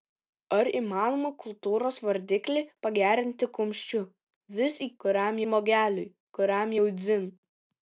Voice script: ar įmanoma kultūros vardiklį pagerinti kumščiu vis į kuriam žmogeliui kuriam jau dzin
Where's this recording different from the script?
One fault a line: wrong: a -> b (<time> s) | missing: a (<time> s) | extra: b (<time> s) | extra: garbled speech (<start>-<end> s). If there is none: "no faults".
no faults